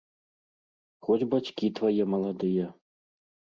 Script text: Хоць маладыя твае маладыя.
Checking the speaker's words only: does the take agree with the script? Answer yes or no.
no